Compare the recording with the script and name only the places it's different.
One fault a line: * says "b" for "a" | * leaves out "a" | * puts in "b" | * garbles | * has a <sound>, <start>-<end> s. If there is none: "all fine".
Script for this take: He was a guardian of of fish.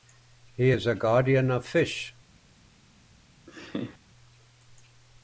* says "is" for "was"
* leaves out "of"
* has a laugh, 3.5-4.0 s